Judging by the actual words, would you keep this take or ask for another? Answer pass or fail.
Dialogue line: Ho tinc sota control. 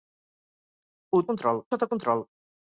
fail